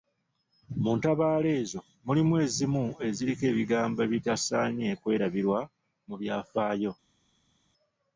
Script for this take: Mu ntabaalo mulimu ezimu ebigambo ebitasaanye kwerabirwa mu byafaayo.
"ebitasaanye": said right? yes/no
yes